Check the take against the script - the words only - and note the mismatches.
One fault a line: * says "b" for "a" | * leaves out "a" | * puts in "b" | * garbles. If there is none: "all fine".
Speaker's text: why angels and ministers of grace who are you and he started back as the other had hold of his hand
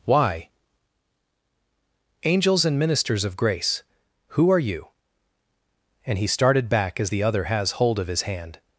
* says "has" for "had"